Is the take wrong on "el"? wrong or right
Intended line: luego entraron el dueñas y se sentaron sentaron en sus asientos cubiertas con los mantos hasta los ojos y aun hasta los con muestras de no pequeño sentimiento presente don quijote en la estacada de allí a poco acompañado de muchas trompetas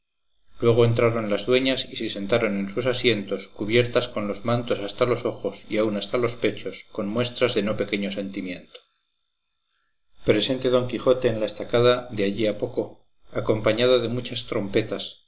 wrong